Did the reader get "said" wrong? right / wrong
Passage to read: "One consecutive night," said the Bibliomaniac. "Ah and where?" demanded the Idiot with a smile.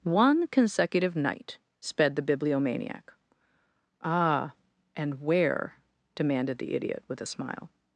wrong